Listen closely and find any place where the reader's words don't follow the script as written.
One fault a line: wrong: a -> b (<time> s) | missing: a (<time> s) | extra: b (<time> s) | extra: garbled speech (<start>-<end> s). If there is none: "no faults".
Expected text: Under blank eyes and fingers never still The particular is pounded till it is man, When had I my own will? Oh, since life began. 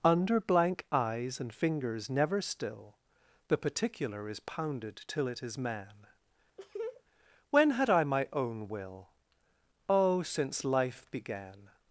no faults